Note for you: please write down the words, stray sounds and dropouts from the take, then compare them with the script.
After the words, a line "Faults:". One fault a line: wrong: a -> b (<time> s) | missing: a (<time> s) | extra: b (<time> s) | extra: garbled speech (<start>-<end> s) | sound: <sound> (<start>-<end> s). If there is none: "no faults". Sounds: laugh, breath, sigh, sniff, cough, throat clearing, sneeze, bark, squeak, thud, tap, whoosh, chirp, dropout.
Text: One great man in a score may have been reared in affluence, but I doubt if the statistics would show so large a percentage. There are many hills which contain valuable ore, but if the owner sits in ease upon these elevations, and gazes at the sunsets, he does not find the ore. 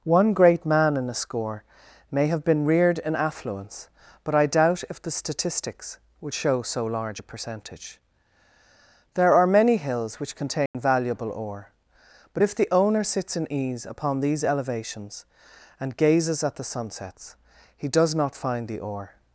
One great man in a score may have been reared in affluence, but I doubt if the statistics would show so large a percentage. There are many hills which contain valuable ore, but if the owner sits in ease upon these elevations, and gazes at the sunsets, he does not find the ore.
Faults:
sound: dropout (10.7-10.7 s)